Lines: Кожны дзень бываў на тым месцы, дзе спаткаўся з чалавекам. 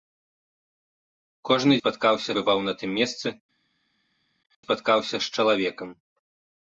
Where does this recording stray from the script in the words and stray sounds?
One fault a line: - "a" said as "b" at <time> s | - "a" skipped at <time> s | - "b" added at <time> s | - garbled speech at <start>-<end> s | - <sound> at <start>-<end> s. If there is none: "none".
- "дзень" said as "спаткаўся" at 1.8 s
- "дзе" skipped at 3.3 s